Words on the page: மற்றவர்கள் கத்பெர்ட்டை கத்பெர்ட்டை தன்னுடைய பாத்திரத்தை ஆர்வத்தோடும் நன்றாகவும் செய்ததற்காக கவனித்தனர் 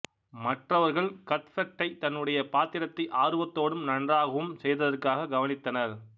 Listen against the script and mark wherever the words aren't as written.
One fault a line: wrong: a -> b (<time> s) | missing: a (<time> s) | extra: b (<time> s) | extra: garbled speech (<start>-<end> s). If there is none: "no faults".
missing: கத்பெர்ட்டை (1.9 s)